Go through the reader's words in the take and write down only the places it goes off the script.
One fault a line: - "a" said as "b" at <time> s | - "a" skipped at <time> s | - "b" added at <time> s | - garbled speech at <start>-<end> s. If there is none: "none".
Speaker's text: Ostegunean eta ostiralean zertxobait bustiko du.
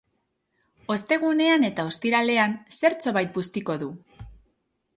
none